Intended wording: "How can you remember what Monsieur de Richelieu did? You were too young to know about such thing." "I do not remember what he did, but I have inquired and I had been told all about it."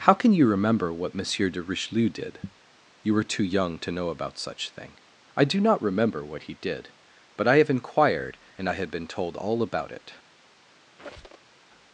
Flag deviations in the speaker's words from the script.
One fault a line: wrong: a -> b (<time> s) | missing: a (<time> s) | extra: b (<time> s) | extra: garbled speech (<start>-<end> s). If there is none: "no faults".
no faults